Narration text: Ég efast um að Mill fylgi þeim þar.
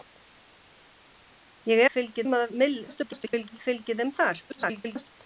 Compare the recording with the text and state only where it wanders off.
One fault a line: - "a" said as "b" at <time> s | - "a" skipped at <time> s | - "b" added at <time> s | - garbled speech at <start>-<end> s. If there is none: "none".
- "efast" said as "fylgi" at 2.0 s
- garbled speech at 2.9-3.6 s
- garbled speech at 4.5-5.1 s